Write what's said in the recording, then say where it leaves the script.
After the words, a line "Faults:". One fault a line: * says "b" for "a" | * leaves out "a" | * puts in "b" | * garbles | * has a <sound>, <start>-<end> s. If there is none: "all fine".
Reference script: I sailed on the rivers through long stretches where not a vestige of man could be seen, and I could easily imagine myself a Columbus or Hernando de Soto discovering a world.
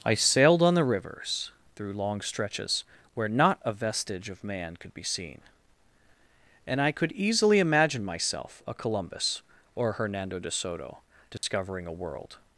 I sailed on the rivers through long stretches where not a vestige of man could be seen, and I could easily imagine myself a Columbus or Hernando de Soto discovering a world.
Faults:
* has a dropout, 11.4-11.4 s